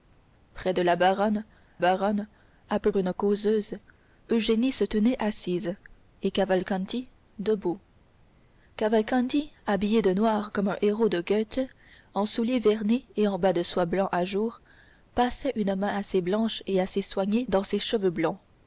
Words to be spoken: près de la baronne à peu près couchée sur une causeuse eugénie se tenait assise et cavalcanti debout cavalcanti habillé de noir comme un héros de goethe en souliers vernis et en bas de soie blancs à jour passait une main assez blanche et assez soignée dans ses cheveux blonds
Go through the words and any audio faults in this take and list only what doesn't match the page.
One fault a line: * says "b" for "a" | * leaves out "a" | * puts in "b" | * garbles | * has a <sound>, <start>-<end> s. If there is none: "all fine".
* puts in "baronne"
* leaves out "près couchée sur"